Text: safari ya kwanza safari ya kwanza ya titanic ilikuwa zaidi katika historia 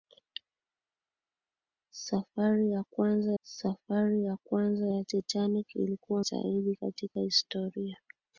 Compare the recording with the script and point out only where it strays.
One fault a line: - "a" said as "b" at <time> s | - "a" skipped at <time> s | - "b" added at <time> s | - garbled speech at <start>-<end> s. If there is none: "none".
none